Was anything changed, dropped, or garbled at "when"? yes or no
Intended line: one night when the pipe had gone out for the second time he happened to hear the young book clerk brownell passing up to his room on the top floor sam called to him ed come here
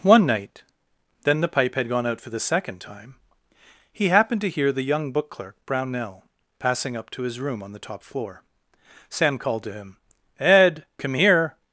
yes